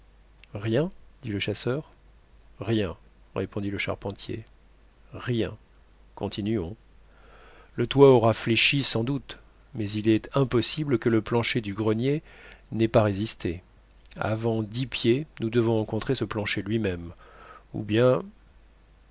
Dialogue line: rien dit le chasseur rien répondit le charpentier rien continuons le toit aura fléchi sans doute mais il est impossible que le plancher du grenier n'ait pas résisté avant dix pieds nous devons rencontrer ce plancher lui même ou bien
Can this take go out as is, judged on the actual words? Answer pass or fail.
pass